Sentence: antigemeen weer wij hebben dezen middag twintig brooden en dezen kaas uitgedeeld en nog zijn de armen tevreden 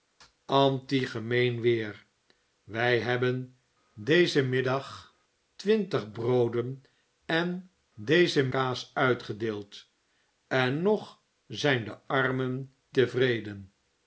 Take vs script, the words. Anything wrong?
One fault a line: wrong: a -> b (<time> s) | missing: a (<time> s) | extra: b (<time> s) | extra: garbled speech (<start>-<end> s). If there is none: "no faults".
no faults